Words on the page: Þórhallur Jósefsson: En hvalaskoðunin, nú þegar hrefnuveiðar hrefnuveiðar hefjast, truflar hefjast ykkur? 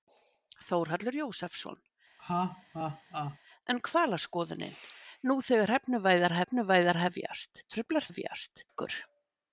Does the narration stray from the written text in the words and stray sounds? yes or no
yes